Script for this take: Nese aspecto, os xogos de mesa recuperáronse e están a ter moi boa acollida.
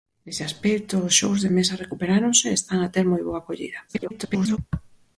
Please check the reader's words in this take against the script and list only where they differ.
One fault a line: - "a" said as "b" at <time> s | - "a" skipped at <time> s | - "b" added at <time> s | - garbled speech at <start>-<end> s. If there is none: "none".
- garbled speech at 3.9-4.6 s